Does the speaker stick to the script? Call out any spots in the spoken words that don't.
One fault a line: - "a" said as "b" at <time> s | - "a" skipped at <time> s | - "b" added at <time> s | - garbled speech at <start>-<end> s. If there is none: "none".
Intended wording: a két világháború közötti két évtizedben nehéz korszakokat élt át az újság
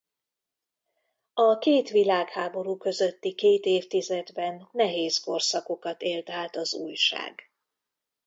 none